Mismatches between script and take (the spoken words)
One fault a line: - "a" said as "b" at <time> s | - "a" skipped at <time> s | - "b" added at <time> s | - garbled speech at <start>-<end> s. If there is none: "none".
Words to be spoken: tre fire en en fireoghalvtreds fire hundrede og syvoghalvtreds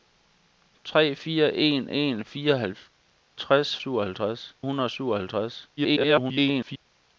- "fire" said as "syvoghalvtreds" at 3.8 s
- garbled speech at 5.8-6.9 s